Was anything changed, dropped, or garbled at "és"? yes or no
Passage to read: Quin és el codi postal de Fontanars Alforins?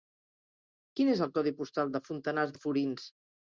no